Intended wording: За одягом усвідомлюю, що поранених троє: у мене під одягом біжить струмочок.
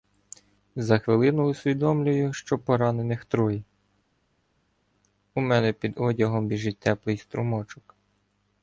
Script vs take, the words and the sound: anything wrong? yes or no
yes